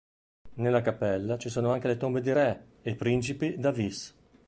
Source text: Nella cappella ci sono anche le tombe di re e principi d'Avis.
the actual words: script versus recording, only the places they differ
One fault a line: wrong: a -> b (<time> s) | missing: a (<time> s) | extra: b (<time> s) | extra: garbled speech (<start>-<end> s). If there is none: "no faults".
no faults